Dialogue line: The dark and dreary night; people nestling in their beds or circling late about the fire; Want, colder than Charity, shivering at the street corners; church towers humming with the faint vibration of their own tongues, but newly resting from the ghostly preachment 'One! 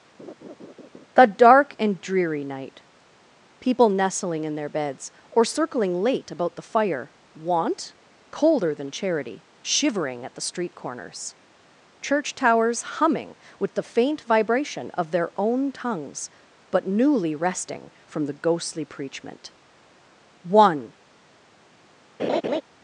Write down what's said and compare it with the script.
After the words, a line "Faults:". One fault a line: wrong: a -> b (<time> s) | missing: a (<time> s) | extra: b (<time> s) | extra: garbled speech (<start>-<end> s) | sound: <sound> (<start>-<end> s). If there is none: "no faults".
The dark and dreary night; people nestling in their beds or circling late about the fire; Want, colder than Charity, shivering at the street corners; church towers humming with the faint vibration of their own tongues, but newly resting from the ghostly preachment 'One!
Faults:
sound: laugh (0.2-1.1 s)
sound: laugh (22.2-22.6 s)